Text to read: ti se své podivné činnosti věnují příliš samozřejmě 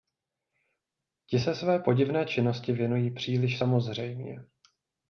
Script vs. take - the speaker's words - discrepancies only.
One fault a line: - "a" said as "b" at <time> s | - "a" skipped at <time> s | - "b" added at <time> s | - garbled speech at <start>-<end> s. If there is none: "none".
none